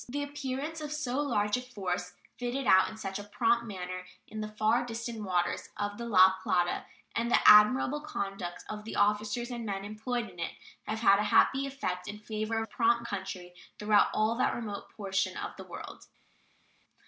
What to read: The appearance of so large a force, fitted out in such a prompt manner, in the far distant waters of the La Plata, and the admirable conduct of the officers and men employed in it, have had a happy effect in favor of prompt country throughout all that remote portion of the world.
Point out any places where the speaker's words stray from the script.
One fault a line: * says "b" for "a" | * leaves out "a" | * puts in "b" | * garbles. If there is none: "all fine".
all fine